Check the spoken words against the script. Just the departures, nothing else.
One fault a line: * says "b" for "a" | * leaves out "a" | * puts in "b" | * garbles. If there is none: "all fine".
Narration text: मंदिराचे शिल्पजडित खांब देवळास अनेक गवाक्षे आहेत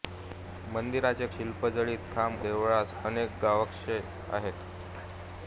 all fine